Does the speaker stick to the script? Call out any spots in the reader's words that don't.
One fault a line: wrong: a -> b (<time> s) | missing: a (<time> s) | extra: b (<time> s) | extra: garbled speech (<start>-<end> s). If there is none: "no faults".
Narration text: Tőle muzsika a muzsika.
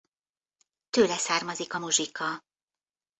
wrong: muzsika -> származik (1.2 s)